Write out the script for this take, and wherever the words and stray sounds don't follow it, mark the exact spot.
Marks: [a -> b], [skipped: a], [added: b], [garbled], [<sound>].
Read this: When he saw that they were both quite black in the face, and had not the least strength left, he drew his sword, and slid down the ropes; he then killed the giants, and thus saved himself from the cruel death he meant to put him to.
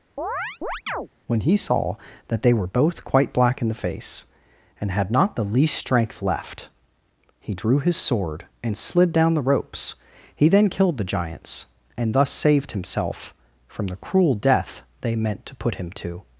[chirp] When he saw that they were both quite black in the face, and had not the least strength left, he drew his sword, and slid down the ropes; he then killed the giants, and thus saved himself from the cruel death [he -> they] meant to put him to.